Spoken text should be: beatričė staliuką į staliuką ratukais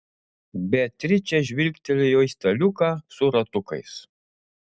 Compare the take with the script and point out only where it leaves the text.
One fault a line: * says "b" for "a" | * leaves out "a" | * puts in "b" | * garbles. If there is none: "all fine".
* says "žvilgtelėjo" for "staliuką"
* puts in "su"